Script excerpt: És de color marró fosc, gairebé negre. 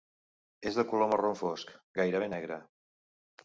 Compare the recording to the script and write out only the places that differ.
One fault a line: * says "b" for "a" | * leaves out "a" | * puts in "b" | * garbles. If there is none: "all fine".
all fine